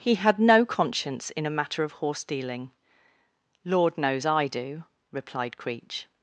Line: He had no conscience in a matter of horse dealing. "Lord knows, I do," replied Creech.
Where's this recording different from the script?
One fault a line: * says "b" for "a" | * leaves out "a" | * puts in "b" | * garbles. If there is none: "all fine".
all fine